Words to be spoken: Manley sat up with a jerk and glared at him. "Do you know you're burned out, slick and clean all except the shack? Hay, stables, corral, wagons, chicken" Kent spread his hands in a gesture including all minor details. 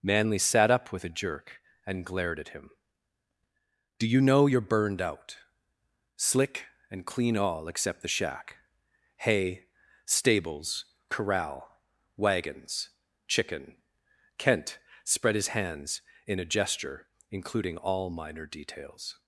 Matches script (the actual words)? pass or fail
pass